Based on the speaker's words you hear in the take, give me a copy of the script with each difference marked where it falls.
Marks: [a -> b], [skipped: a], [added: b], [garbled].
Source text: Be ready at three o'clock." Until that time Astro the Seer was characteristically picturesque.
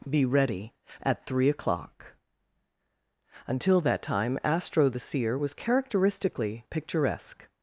Be ready at three o'clock." Until that time Astro the Seer was characteristically picturesque.